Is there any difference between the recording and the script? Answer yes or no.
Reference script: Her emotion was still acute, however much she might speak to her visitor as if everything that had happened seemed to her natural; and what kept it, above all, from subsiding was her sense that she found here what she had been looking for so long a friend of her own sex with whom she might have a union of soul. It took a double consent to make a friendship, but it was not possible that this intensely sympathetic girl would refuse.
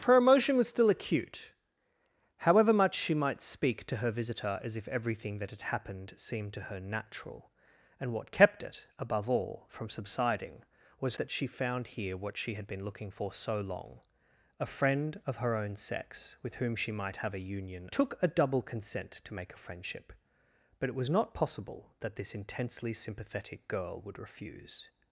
yes